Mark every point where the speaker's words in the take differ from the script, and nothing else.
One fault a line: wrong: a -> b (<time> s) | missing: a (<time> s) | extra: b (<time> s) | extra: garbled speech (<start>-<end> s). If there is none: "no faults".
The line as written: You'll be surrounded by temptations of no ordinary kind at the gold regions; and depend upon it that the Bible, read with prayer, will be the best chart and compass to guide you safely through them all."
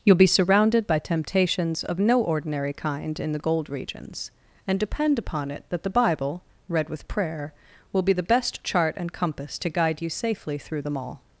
wrong: at -> in (3.2 s)